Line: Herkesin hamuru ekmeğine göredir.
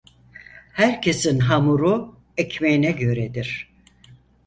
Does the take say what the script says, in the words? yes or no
yes